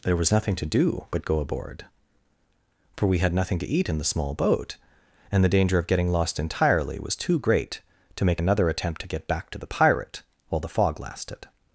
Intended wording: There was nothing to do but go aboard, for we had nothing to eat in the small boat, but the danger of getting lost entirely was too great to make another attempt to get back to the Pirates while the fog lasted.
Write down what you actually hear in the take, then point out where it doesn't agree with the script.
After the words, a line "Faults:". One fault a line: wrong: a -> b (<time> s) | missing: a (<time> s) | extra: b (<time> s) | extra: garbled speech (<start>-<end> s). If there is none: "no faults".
There was nothing to do but go aboard, for we had nothing to eat in the small boat, and the danger of getting lost entirely was too great to make another attempt to get back to the Pirate while the fog lasted.
Faults:
wrong: but -> and (5.3 s)
wrong: Pirates -> Pirate (9.7 s)